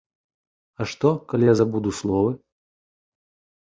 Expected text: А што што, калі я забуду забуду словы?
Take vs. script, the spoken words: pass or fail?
fail